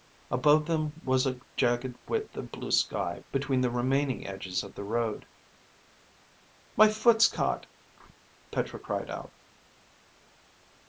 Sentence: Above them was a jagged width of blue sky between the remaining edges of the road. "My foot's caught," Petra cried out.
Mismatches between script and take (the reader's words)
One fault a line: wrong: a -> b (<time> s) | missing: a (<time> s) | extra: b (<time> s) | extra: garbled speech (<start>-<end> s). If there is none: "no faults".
no faults